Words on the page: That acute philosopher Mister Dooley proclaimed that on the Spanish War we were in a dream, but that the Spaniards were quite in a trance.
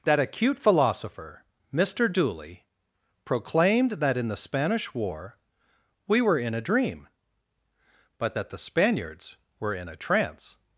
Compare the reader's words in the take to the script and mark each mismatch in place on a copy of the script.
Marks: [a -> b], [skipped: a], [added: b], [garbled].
That acute philosopher Mister Dooley proclaimed that [on -> in] the Spanish War we were in a dream, but that the Spaniards were [skipped: quite] in a trance.